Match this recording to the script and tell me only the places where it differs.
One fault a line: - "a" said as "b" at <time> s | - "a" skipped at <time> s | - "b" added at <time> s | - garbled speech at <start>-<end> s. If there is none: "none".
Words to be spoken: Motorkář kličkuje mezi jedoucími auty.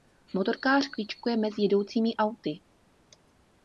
none